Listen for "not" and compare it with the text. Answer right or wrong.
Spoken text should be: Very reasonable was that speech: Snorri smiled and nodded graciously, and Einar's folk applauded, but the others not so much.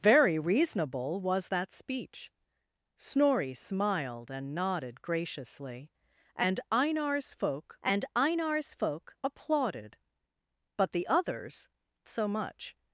wrong